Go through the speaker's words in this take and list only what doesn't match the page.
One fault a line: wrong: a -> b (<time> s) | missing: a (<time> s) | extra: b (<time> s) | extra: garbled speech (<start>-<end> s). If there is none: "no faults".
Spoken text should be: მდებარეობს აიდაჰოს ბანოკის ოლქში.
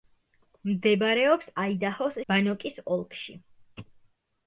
no faults